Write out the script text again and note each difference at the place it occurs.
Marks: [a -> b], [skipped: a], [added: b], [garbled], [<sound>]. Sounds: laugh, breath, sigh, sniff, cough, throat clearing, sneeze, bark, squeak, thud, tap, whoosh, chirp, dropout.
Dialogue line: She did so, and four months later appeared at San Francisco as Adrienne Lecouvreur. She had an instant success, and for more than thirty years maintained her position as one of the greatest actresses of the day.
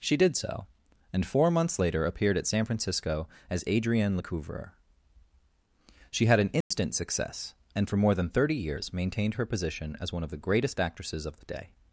She did so, and four months later appeared at San Francisco as Adrienne Lecouvreur. She had an instant [dropout] success, and for more than thirty years maintained her position as one of the greatest actresses of the day.